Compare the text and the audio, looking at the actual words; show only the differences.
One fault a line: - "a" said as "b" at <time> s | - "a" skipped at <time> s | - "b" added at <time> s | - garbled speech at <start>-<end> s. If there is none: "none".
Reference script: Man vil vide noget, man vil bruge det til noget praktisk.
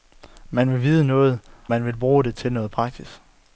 none